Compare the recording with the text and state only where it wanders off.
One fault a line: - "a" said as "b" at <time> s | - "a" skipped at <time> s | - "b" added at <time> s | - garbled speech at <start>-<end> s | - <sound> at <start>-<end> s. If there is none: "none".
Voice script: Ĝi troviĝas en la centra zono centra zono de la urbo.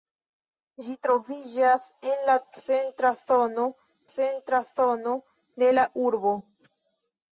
none